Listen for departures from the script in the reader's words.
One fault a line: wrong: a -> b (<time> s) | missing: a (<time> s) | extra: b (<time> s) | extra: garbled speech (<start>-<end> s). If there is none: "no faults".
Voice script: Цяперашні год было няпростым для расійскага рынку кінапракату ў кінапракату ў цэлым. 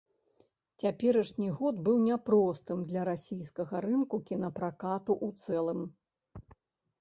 wrong: было -> быў (1.9 s)
missing: кінапракату ў (5.6 s)